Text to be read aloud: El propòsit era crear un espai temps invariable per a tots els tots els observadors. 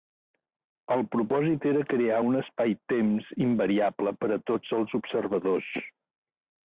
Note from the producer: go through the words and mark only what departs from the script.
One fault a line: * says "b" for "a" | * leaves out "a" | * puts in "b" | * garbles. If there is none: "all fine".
* leaves out "tots els"